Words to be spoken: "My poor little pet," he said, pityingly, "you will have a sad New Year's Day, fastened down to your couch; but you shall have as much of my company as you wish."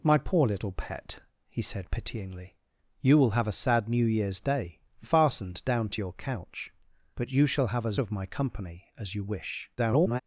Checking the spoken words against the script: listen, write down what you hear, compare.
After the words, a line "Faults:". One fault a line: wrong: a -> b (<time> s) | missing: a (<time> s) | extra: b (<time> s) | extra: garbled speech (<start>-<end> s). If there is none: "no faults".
"My poor little pet," he said, pityingly, "you will have a sad New Year's Day, fastened down to your couch; but you shall have as of my company as you wish." [garbled]
Faults:
missing: much (8.0 s)
extra: garbled speech (9.8-10.2 s)